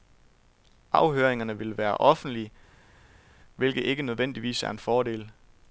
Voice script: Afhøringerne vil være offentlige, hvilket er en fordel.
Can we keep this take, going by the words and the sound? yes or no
no